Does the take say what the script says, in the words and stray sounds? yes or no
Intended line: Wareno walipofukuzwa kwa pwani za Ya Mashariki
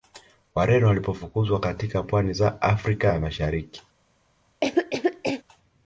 no